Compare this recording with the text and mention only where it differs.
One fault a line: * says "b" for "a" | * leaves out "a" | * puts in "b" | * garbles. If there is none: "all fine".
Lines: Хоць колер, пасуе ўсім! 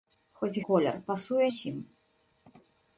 all fine